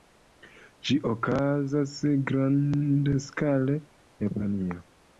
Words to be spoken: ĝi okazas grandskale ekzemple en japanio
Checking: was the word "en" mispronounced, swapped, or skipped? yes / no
yes